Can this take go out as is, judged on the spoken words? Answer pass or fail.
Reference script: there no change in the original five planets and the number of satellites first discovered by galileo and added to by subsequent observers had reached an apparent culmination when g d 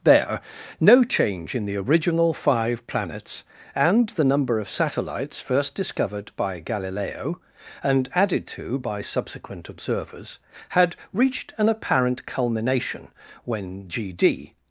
pass